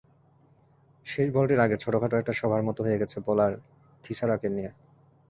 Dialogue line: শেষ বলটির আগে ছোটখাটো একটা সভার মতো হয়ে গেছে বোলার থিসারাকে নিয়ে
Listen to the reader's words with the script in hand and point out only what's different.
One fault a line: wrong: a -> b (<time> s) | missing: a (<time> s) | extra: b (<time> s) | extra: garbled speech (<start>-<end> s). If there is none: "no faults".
no faults